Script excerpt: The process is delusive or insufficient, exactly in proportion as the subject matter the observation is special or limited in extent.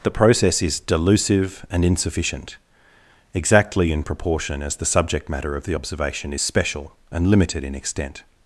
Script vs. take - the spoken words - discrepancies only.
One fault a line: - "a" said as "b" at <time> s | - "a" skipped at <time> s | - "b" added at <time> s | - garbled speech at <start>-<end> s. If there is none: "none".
- "or" said as "and" at 1.7 s
- "of" added at 5.5 s
- "or" said as "and" at 7.1 s